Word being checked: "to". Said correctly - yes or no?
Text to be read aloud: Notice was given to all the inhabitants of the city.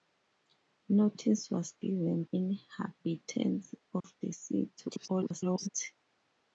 no